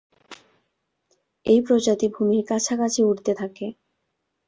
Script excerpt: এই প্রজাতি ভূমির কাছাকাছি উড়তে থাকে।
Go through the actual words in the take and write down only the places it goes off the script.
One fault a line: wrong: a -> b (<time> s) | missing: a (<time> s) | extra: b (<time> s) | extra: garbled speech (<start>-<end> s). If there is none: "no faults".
no faults